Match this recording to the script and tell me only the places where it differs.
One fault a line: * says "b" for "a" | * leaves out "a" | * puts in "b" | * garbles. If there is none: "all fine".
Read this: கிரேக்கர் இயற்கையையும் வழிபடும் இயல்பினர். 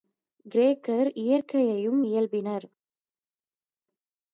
* leaves out "வழிபடும்"